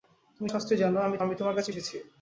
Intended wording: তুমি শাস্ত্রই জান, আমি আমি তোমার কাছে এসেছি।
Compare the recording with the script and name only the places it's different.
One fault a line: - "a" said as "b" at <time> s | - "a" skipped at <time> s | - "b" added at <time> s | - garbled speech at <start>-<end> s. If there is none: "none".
none